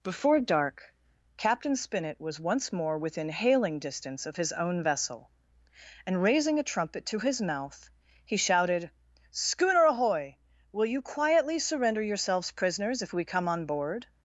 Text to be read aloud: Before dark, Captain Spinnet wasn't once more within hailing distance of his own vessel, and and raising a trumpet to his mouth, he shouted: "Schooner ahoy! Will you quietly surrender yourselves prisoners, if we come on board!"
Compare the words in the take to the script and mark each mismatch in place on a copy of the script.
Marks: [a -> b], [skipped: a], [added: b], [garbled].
Before dark, Captain Spinnet [wasn't -> was] once more within hailing distance of his own vessel, and [skipped: and] raising a trumpet to his mouth, he shouted: "Schooner ahoy! Will you quietly surrender yourselves prisoners, if we come on board!"